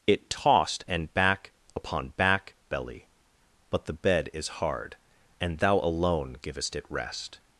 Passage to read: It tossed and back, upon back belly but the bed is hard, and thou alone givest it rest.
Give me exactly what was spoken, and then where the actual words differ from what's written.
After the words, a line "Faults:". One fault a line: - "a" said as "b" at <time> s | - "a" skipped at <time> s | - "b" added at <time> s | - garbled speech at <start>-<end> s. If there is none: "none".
It tossed and back, upon back belly but the bed is hard, and thou alone givest it rest.
Faults:
none